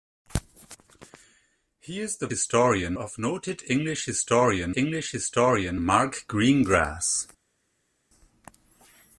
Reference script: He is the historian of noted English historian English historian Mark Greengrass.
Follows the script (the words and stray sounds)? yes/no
yes